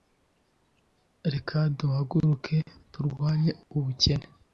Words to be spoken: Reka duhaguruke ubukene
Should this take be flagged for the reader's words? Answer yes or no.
yes